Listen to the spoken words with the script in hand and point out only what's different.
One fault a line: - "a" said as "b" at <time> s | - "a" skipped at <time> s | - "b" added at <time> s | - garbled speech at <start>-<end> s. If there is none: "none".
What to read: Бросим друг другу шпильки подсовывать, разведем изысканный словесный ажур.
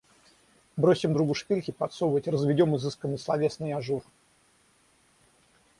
- "друг" skipped at 1.1 s